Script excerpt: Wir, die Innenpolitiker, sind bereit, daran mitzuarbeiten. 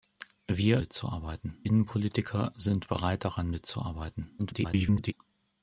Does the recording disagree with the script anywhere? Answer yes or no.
yes